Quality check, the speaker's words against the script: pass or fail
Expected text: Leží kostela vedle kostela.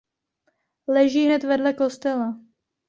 fail